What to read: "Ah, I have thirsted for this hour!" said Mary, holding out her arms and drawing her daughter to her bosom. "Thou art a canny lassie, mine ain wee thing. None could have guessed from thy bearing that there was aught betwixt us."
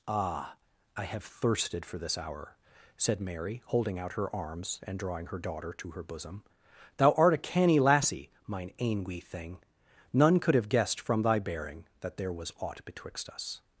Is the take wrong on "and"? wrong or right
right